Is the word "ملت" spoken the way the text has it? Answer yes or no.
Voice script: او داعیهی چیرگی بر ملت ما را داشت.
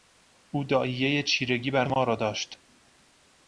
no